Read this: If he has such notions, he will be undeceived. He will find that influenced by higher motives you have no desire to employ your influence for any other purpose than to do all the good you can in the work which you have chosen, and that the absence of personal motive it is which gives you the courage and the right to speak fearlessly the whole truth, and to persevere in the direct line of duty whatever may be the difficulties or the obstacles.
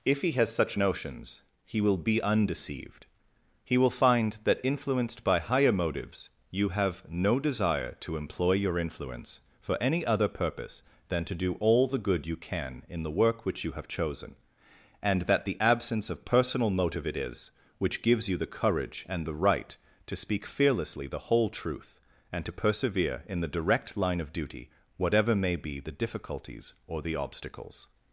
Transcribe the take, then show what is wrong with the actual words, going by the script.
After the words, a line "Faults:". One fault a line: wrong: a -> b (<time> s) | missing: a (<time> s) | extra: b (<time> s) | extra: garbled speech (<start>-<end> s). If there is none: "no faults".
If he has such notions, he will be undeceived. He will find that influenced by higher motives you have no desire to employ your influence for any other purpose than to do all the good you can in the work which you have chosen, and that the absence of personal motive it is which gives you the courage and the right to speak fearlessly the whole truth, and to persevere in the direct line of duty whatever may be the difficulties or the obstacles.
Faults:
no faults